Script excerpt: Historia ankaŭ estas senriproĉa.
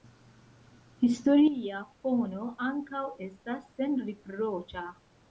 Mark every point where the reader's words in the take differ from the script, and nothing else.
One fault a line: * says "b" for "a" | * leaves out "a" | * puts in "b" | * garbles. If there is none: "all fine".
* puts in "fono"